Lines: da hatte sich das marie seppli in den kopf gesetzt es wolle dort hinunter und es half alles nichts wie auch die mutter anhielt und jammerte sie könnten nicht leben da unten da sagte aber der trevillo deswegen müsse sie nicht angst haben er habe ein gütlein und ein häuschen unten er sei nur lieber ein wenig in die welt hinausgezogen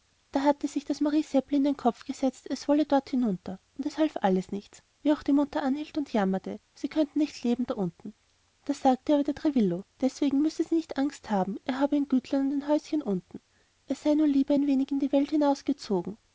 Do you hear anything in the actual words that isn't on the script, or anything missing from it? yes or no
no